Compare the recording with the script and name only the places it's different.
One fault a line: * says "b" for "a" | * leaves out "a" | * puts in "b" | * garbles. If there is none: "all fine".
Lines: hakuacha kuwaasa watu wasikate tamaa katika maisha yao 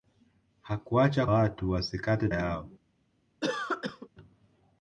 * leaves out "kuwaasa"
* leaves out "tamaa katika maisha"